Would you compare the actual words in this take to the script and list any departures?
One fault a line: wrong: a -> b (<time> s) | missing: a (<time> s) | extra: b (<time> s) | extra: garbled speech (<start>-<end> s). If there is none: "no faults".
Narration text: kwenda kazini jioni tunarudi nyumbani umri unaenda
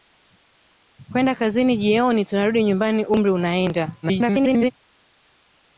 extra: garbled speech (4.0-4.7 s)